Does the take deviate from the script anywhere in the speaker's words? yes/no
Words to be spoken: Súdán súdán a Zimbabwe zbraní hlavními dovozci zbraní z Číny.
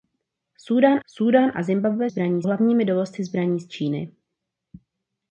no